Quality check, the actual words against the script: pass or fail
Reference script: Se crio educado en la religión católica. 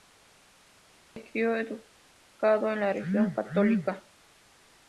pass